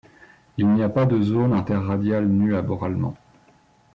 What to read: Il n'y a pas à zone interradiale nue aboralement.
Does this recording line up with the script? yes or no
no